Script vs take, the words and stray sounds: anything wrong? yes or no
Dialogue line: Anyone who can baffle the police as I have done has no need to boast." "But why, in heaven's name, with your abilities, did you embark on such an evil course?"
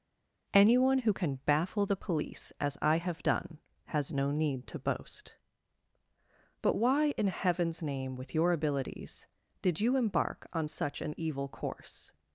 no